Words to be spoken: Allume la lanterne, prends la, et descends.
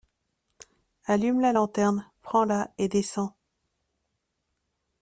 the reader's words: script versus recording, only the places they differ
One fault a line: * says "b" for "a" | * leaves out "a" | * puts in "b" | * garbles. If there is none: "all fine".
all fine